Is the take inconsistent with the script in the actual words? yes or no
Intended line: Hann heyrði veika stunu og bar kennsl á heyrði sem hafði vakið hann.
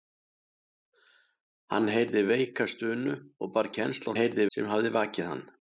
no